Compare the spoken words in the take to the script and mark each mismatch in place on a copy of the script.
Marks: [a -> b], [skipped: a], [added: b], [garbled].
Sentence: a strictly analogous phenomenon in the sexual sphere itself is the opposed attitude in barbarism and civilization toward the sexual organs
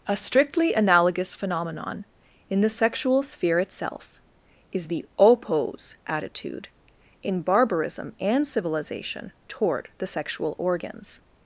a strictly analogous phenomenon in the sexual sphere itself is the [opposed -> oppose] attitude in barbarism and civilization toward the sexual organs